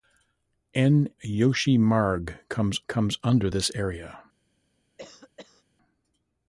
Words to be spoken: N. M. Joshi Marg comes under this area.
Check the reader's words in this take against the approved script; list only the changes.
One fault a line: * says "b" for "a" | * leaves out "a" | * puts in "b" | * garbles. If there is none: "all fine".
* leaves out "M"
* puts in "comes"